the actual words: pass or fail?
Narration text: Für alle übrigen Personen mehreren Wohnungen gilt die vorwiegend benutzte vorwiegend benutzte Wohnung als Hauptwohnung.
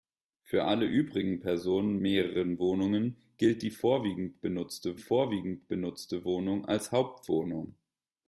pass